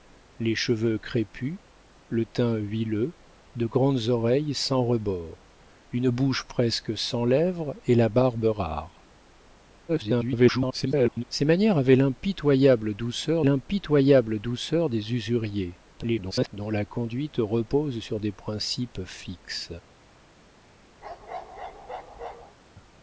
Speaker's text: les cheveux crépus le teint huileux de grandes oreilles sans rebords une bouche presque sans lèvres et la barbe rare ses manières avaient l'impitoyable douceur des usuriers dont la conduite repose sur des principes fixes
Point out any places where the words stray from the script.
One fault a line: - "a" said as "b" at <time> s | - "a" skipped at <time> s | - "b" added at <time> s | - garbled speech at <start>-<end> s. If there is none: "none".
- garbled speech at 9.9-11.2 s
- "l'impitoyable douceur" added at 13.4 s
- garbled speech at 15.9-16.5 s